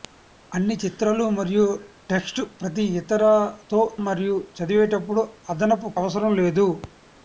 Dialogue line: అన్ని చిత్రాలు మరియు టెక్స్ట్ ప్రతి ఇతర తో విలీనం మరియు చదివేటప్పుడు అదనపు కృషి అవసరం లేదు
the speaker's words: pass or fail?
fail